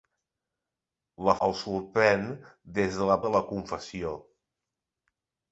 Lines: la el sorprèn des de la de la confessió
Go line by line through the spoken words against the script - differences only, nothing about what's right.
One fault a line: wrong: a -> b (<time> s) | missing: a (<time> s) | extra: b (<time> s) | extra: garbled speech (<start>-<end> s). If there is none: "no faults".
no faults